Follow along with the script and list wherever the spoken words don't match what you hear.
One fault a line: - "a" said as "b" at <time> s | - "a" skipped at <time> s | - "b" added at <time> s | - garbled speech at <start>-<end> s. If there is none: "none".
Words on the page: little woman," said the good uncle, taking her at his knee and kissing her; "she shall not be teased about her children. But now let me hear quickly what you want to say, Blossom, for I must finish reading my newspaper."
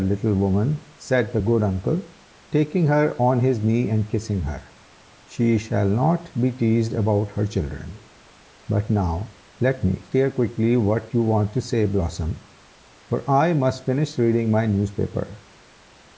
- "at" said as "on" at 3.2 s